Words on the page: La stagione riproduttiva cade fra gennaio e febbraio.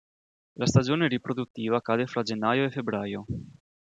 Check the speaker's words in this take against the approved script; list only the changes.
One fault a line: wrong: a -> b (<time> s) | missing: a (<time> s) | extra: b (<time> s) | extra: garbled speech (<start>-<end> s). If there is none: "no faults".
no faults